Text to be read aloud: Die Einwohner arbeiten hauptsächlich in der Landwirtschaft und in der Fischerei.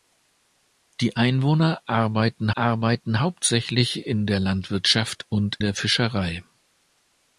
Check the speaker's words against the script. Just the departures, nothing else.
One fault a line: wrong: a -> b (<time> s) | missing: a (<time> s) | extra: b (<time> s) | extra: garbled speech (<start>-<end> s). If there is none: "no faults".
extra: arbeiten (2.5 s)
missing: in (5.6 s)